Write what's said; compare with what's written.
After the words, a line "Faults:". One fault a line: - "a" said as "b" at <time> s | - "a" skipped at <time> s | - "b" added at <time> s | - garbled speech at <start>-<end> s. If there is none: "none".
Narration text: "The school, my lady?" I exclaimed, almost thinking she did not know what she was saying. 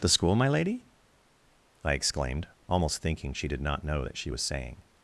"The school, my lady?" I exclaimed, almost thinking she did not know that she was saying.
Faults:
- "what" said as "that" at 4.0 s